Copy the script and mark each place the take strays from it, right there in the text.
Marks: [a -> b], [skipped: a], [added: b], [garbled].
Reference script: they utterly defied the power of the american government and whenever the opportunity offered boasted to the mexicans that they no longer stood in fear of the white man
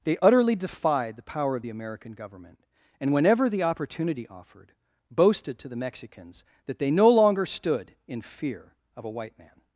they utterly defied the power of the american government and whenever the opportunity offered boasted to the mexicans that they no longer stood in fear of [the -> a] white man